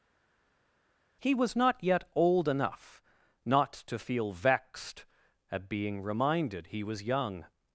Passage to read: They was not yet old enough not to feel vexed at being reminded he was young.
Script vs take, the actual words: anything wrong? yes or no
yes